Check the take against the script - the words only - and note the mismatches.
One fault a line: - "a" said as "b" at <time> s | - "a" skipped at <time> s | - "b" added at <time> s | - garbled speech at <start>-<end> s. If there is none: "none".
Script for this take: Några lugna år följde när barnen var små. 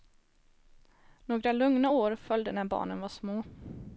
none